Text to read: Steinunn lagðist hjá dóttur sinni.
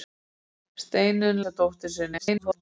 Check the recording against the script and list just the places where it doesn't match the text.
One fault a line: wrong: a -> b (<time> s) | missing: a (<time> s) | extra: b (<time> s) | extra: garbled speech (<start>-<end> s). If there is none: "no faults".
missing: lagðist (1.4 s)
extra: garbled speech (2.2-2.6 s)